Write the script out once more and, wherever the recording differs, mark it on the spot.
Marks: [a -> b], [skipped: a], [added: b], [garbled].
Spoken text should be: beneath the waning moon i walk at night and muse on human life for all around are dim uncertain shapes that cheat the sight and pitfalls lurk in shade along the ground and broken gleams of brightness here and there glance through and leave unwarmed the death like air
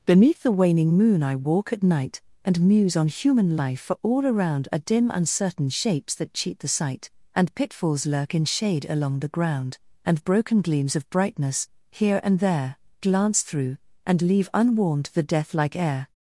beneath the waning moon i walk at night and muse on human life for all around are dim uncertain shapes that cheat the sight and pitfalls lurk in shade along the ground and broken gleams of brightness here and there glance through and leave unwarmed the death like air